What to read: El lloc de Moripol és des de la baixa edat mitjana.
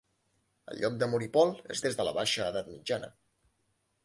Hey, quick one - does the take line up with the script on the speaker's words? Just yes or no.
yes